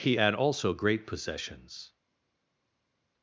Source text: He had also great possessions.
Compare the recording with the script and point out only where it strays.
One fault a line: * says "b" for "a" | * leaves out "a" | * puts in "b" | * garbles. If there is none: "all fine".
all fine